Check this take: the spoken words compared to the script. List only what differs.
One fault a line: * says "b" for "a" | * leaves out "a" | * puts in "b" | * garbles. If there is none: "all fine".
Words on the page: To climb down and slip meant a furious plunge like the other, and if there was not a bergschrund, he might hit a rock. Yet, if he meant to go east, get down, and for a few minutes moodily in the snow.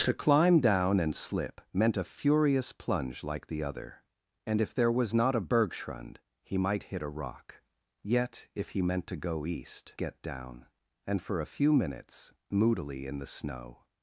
all fine